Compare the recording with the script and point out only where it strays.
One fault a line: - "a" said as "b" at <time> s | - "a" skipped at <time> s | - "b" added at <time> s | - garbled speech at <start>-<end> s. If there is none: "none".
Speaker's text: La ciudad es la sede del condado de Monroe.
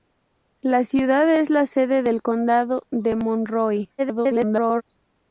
- garbled speech at 4.0-4.8 s